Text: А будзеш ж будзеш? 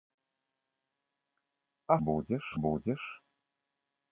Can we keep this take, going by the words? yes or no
yes